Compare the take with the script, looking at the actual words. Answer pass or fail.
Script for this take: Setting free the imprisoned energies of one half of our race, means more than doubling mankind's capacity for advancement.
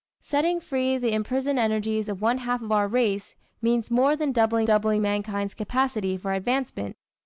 fail